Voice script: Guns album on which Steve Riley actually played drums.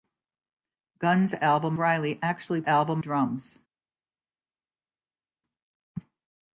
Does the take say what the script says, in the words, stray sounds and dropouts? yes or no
no